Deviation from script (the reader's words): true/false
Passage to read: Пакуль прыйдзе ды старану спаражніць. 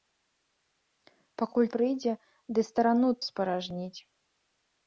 false